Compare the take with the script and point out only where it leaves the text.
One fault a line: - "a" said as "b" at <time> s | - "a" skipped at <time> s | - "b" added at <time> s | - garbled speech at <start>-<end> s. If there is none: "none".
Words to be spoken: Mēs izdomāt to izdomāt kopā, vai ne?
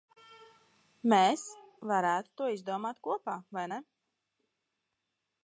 - "izdomāt" said as "varētu" at 1.9 s